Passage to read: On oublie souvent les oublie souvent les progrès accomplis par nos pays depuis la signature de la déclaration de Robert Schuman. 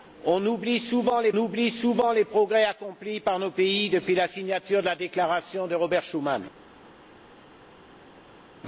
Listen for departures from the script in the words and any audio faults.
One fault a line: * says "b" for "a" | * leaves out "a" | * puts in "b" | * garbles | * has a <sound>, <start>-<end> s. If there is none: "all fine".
all fine